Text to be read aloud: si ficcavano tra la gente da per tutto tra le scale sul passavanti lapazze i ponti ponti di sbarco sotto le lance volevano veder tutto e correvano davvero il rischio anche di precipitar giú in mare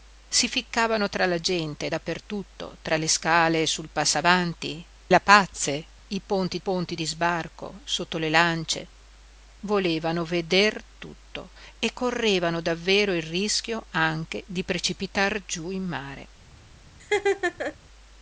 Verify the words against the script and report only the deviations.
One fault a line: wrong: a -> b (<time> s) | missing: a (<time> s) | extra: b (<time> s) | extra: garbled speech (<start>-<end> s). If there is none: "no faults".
no faults